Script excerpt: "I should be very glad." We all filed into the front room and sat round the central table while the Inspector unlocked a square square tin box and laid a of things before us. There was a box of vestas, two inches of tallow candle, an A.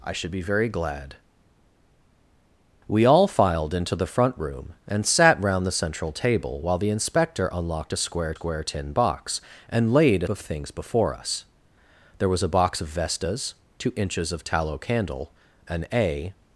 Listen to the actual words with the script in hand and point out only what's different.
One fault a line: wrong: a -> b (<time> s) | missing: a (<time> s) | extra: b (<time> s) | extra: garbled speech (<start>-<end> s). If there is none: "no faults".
no faults